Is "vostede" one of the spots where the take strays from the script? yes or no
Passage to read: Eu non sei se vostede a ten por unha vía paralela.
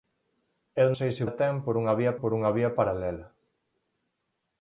yes